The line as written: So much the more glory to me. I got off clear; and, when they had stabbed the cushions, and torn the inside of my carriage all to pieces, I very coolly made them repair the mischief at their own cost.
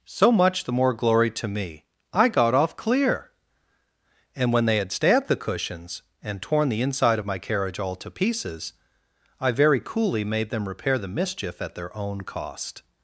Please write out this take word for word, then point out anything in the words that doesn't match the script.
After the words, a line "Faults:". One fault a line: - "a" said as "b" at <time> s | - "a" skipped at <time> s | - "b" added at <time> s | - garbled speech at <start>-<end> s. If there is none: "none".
So much the more glory to me. I got off clear; and, when they had stabbed the cushions, and torn the inside of my carriage all to pieces, I very coolly made them repair the mischief at their own cost.
Faults:
none